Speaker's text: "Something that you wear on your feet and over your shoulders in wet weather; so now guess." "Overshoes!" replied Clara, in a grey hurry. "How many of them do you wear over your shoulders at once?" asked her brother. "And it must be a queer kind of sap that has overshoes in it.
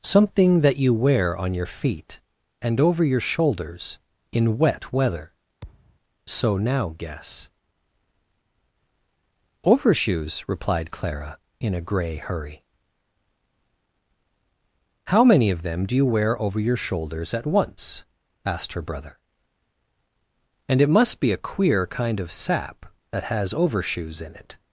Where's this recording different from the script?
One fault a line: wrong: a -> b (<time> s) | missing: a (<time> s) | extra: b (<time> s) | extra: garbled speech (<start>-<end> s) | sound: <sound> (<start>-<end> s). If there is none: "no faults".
sound: thud (5.6-6.0 s)